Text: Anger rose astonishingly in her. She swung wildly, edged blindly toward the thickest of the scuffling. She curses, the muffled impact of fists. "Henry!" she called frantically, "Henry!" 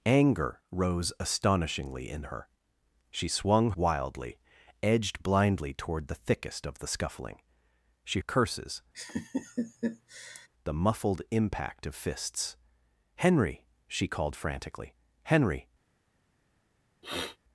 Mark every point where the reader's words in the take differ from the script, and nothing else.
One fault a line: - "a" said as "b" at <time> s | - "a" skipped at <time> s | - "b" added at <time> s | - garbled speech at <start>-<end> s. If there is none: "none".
none